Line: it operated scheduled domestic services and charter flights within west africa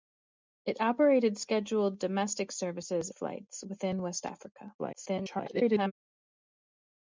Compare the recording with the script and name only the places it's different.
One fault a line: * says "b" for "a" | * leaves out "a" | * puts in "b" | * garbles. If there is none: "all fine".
* leaves out "and charter"
* garbles